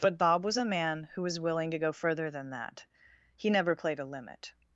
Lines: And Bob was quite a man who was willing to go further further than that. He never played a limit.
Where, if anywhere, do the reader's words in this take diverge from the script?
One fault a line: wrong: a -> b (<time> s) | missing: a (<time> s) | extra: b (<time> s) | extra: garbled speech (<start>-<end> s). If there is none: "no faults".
wrong: And -> But (0.0 s)
missing: quite (0.6 s)
missing: further (2.3 s)